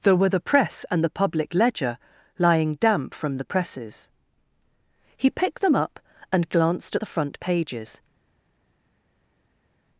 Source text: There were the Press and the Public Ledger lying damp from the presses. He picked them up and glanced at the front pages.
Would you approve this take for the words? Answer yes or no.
yes